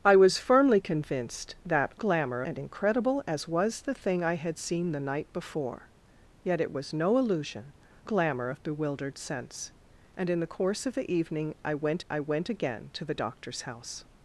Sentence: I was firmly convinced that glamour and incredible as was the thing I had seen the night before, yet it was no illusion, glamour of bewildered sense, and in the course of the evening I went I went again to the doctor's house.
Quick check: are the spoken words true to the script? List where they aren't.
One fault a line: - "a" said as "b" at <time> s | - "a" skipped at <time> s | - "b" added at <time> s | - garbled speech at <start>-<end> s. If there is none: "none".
none